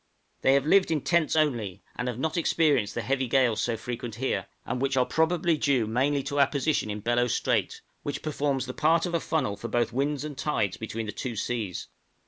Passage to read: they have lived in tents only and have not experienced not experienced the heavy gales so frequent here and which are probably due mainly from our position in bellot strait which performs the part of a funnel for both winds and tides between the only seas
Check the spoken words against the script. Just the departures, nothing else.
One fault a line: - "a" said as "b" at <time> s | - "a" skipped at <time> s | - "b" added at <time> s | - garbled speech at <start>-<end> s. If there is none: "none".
- "not experienced" skipped at 2.9 s
- "from" said as "to" at 6.2 s
- "only" said as "two" at 11.1 s